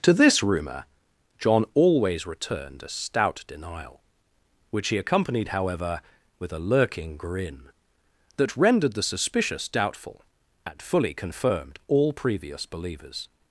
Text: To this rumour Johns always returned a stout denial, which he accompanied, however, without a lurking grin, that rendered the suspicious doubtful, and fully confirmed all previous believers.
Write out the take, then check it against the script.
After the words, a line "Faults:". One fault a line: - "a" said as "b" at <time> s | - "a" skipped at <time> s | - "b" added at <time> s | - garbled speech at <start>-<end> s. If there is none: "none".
To this rumour John always returned a stout denial, which he accompanied, however, with a lurking grin, that rendered the suspicious doubtful, and fully confirmed all previous believers.
Faults:
- "Johns" said as "John" at 1.4 s
- "without" said as "with" at 6.4 s